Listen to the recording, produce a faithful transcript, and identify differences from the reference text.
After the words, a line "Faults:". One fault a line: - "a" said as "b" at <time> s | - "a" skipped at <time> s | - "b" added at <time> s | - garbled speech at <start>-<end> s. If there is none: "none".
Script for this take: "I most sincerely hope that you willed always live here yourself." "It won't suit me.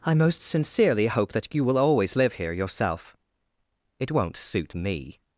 "I most sincerely hope that you will always live here yourself." "It won't suit me.
Faults:
- "willed" said as "will" at 1.6 s